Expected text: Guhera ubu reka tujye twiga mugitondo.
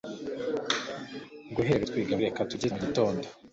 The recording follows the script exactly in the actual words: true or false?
false